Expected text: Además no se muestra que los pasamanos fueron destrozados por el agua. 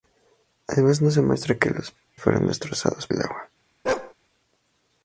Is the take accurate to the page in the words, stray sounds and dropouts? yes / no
no